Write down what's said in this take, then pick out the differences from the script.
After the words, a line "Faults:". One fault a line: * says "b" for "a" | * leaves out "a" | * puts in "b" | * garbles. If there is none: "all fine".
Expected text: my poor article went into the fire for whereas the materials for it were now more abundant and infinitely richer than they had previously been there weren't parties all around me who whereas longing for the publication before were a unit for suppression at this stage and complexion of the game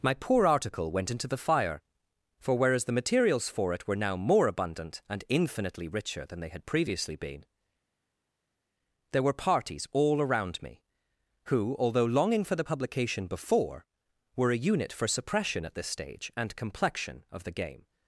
my poor article went into the fire for whereas the materials for it were now more abundant and infinitely richer than they had previously been there were parties all around me who although longing for the publication before were a unit for suppression at this stage and complexion of the game
Faults:
* says "were" for "weren't"
* says "although" for "whereas"